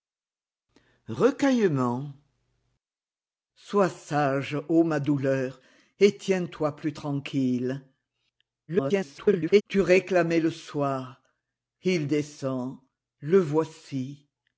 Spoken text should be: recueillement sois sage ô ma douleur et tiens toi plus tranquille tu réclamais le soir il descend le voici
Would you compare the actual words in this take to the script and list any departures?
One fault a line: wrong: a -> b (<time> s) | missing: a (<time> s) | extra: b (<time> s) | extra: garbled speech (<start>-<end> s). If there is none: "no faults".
extra: garbled speech (8.7-9.6 s)